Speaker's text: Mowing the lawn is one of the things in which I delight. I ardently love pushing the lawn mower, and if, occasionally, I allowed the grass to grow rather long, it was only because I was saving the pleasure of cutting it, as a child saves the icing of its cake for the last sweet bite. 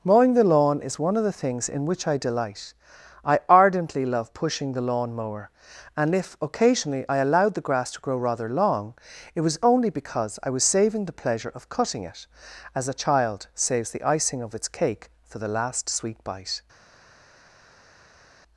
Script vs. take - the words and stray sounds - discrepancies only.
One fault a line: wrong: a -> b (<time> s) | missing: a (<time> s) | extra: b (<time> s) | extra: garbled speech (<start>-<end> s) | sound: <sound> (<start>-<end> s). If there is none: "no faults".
no faults